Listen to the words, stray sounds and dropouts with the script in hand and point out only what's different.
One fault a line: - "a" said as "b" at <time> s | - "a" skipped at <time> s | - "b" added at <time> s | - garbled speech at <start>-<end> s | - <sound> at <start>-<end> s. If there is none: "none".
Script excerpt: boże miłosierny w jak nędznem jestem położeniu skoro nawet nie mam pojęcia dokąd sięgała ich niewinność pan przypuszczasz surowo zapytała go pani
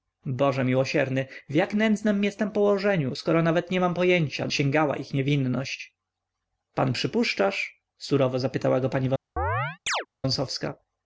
- "dokąd" skipped at 4.5 s
- chirp at 9.4-10.1 s